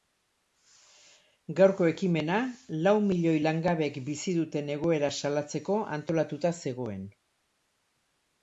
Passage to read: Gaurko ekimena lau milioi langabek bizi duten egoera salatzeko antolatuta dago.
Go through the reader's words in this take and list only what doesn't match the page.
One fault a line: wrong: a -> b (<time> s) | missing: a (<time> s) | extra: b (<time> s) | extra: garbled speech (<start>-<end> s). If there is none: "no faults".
wrong: dago -> zegoen (6.6 s)